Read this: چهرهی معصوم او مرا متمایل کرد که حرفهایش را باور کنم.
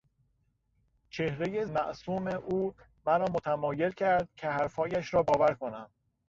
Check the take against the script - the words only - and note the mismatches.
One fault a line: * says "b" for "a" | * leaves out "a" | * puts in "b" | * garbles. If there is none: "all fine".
all fine